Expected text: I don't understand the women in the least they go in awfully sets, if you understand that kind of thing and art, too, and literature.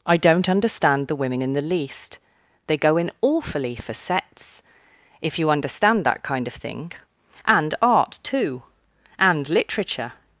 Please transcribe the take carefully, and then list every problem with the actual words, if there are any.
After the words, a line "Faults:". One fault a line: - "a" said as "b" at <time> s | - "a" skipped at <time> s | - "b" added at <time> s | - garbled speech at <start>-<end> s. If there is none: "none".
I don't understand the women in the least they go in awfully for sets, if you understand that kind of thing and art, too, and literature.
Faults:
- "for" added at 3.8 s